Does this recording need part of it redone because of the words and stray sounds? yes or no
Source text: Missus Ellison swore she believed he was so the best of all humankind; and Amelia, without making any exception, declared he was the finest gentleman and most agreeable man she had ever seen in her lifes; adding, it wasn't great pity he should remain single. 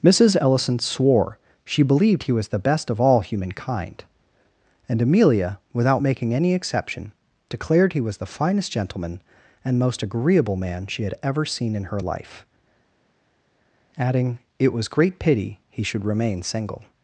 yes